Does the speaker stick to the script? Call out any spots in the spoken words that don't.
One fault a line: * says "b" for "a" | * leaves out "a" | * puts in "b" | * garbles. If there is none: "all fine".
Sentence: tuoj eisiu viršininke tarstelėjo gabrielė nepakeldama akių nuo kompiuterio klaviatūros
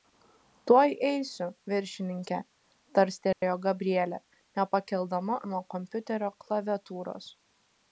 * leaves out "akių"